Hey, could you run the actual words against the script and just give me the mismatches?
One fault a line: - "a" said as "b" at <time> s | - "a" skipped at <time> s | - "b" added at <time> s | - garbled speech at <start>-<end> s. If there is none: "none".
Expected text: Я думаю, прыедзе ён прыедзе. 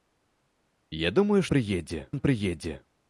none